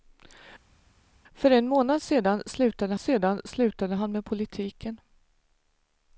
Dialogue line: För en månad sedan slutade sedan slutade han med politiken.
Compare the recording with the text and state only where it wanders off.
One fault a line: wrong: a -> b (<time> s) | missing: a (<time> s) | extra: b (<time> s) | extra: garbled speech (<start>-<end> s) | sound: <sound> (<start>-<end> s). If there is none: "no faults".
no faults